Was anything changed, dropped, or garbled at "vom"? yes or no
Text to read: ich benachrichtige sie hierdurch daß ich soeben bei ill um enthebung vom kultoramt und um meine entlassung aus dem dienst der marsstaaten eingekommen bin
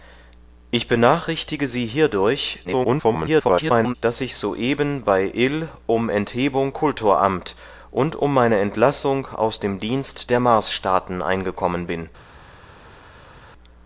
yes